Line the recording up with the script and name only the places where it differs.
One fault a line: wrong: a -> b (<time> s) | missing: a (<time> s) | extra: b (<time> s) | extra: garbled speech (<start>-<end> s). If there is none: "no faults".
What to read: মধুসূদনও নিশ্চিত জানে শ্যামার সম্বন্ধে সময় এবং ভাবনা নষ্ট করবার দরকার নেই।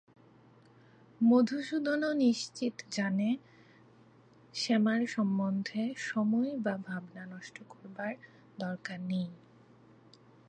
wrong: এবং -> বা (6.6 s)